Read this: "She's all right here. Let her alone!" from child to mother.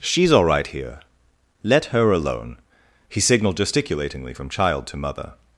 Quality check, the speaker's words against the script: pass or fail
fail